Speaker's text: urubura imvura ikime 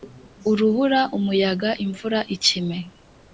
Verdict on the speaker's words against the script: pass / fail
fail